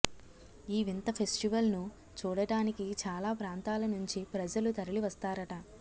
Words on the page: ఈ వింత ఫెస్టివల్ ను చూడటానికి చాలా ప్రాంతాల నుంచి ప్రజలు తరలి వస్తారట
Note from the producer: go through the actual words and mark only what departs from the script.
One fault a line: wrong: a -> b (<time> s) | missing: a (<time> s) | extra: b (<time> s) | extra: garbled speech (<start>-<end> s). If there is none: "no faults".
no faults